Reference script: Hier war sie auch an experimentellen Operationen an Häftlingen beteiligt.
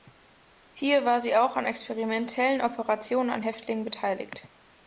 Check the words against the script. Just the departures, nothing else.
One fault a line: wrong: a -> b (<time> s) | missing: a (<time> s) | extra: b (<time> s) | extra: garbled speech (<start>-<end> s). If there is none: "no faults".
no faults